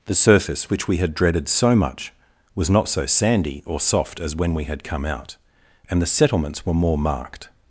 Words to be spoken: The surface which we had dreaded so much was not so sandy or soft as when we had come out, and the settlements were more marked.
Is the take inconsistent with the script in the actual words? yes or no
no